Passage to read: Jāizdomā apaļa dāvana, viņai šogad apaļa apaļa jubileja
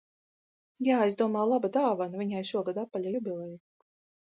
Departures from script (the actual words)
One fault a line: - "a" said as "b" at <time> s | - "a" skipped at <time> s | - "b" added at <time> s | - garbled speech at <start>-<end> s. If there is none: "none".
- "apaļa" said as "laba" at 1.5 s
- "apaļa" skipped at 3.1 s